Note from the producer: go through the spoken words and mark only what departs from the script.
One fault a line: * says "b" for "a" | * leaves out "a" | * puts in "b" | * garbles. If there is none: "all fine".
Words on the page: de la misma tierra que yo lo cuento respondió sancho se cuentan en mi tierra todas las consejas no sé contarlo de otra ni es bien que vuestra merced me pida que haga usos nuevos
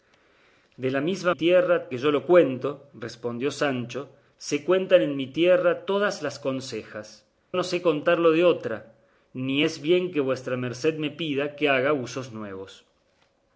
all fine